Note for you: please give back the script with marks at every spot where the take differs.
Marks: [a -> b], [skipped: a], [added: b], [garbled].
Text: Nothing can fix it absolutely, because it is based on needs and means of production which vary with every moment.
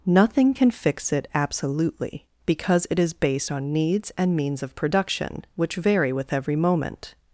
Nothing can fix it absolutely, because it is based on needs and means of production which vary with every moment.